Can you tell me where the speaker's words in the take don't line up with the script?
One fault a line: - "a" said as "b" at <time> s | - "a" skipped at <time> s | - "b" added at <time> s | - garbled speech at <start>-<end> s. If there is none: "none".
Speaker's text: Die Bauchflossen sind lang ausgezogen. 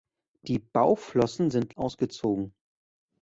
- "lang" skipped at 1.7 s